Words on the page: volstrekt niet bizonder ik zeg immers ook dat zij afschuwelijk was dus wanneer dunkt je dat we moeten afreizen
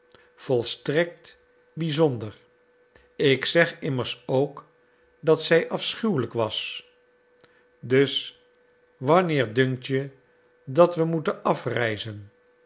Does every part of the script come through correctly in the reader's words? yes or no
no